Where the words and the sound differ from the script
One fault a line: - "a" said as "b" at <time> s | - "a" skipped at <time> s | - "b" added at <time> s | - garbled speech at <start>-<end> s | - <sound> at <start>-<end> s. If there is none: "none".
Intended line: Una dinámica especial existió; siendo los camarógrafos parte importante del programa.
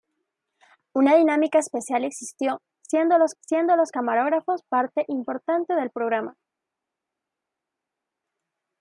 - "siendo los" added at 3.4 s